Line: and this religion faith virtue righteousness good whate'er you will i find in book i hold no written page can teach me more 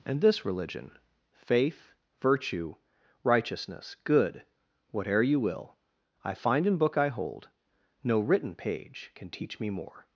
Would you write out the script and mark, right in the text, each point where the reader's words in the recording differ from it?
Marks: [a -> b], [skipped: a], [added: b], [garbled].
and this religion faith virtue righteousness good whate'er you will i find in book i hold no written page can teach me more